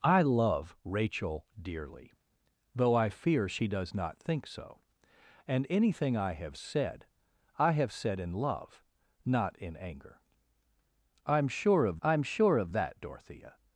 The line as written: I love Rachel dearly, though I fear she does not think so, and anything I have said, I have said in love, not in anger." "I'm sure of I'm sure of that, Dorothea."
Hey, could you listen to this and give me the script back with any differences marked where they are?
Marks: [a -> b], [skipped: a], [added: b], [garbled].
I love Rachel dearly, though I fear she does not think so, and anything I have said, I have said in love, not in anger." "I'm sure of I'm sure of that, Dorothea."